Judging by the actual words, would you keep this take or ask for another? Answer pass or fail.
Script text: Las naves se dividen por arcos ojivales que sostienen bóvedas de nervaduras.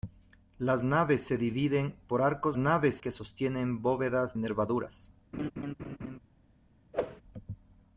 fail